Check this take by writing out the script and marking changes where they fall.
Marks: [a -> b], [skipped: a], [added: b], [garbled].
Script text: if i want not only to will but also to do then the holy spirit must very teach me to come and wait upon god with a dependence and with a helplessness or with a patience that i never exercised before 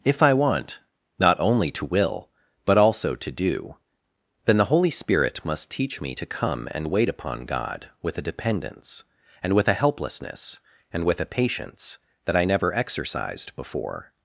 if i want not only to will but also to do then the holy spirit must [skipped: very] teach me to come and wait upon god with a dependence and with a helplessness [or -> and] with a patience that i never exercised before